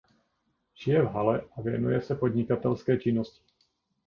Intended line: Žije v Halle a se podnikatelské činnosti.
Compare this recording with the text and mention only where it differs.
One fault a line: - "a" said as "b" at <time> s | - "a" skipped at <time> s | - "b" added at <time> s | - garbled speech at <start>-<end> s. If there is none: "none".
- "věnuje" added at 1.6 s